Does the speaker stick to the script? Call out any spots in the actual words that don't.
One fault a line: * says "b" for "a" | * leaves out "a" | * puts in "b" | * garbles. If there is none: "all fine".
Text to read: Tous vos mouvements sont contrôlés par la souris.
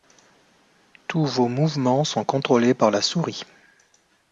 all fine